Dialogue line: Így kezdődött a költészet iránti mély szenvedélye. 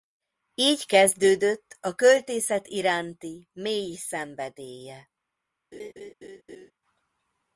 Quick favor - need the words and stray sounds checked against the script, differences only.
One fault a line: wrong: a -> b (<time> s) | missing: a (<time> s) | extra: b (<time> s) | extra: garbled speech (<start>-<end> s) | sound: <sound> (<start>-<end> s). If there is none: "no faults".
sound: laugh (5.7-6.7 s)